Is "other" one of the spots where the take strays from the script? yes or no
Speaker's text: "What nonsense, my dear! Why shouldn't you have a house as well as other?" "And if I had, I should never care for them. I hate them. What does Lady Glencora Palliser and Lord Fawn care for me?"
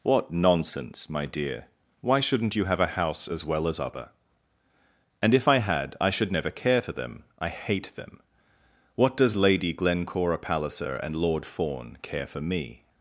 no